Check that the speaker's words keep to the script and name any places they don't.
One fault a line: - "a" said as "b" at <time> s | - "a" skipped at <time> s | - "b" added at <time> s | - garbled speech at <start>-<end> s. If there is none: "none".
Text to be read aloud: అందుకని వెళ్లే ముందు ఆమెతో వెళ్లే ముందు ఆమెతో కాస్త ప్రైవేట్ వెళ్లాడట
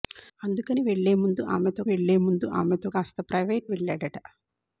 none